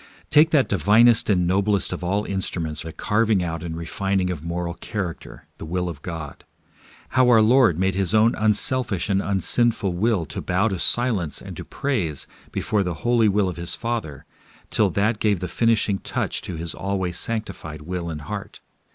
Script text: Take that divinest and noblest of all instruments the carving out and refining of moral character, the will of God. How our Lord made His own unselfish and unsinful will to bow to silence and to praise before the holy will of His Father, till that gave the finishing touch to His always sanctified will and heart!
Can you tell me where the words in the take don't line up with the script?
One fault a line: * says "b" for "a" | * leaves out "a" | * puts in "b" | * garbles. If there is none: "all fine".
all fine